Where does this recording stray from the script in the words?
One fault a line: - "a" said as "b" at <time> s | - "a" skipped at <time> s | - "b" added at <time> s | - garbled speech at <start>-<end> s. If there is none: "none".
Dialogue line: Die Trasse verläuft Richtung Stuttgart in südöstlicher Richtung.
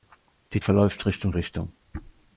- "Trasse" skipped at 0.6 s
- "Stuttgart in südöstlicher" skipped at 1.3 s